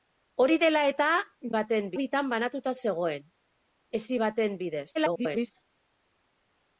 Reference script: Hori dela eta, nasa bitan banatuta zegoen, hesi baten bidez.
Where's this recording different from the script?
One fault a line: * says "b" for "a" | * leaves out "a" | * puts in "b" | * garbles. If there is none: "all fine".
* says "baten" for "nasa"
* garbles